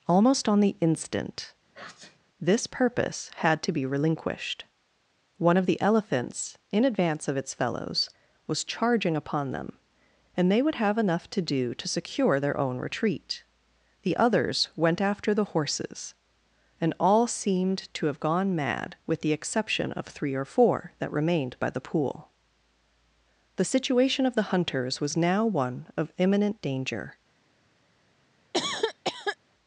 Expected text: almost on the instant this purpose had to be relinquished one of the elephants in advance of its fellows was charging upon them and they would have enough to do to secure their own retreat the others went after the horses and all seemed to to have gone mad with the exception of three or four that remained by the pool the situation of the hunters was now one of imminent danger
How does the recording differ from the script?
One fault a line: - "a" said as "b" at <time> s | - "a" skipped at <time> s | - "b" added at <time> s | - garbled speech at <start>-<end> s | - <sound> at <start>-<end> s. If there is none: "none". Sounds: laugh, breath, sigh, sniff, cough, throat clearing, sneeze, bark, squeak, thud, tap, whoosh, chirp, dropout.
- sneeze at 1.7-2.2 s
- "to" skipped at 18.1 s
- cough at 28.5-29.4 s